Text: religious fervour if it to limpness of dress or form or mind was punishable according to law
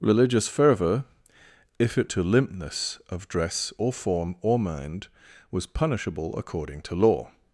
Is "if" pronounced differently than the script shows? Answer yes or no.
no